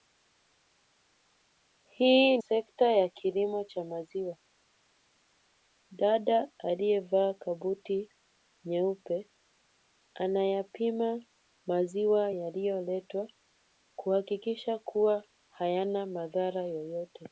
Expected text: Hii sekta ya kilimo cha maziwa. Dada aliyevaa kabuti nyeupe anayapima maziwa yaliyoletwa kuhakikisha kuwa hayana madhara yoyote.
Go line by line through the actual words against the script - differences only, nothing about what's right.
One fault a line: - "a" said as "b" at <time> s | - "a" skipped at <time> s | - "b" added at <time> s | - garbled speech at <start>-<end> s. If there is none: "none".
none